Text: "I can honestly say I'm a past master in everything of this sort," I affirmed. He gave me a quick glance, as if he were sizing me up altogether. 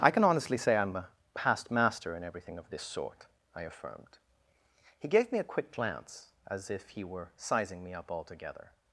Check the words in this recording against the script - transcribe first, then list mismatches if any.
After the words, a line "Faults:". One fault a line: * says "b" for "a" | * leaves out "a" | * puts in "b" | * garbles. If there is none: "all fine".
"I can honestly say I'm a past master in everything of this sort," I affirmed. He gave me a quick glance, as if he were sizing me up altogether.
Faults:
all fine